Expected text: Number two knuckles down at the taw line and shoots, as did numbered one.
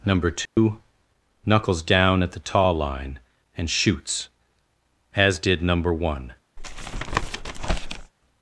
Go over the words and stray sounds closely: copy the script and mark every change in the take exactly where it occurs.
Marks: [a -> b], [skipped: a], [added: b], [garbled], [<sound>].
Number two [dropout] knuckles down at the taw line and shoots, as did [numbered -> number] one. [tap]